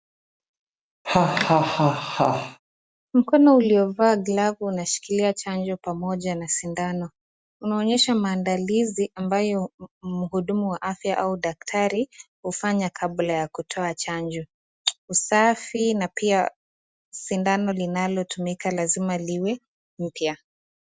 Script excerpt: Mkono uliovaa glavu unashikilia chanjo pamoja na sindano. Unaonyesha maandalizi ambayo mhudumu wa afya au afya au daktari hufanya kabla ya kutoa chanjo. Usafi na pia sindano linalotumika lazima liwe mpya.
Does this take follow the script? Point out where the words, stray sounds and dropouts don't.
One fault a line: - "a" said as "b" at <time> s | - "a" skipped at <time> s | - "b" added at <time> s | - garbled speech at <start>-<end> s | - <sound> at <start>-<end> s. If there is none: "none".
- laugh at 1.0-2.6 s
- "afya au" skipped at 11.4 s